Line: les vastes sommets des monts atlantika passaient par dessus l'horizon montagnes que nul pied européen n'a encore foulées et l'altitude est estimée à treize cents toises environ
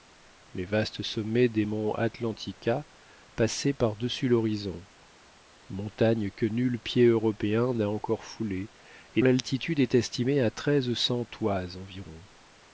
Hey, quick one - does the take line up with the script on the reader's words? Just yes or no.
yes